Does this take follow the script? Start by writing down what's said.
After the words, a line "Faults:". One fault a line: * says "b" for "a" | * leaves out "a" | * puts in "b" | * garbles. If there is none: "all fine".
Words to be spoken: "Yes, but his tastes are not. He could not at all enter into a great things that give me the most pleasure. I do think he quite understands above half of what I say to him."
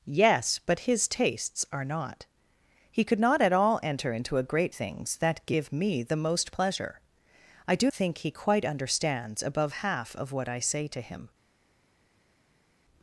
"Yes, but his tastes are not. He could not at all enter into a great things that give me the most pleasure. I do think he quite understands above half of what I say to him."
Faults:
all fine